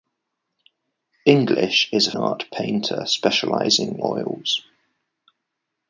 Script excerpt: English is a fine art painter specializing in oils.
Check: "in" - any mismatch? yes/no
yes